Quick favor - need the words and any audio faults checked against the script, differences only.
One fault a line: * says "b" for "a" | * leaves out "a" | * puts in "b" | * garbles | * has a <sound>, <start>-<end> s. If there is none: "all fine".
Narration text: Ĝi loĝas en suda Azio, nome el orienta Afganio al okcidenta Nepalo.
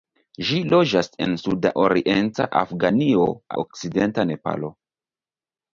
* leaves out "Azio nome el"
* leaves out "al"